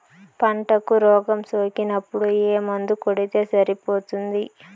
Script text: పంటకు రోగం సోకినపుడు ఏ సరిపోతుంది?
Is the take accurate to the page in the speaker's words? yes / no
no